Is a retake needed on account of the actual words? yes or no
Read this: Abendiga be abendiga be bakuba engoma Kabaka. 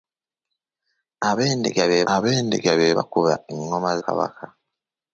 no